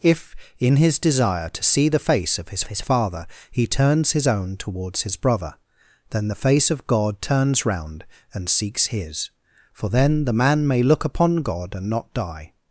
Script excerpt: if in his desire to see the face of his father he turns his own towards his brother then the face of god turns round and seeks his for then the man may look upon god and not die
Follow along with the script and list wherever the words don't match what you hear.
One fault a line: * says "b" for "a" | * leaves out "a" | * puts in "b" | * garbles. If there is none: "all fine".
* puts in "his"